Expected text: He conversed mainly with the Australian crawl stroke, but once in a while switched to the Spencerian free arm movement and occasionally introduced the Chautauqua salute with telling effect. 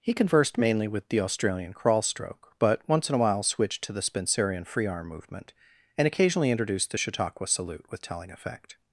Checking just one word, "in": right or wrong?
right